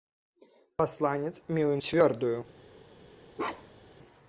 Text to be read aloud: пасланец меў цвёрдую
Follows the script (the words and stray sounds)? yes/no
no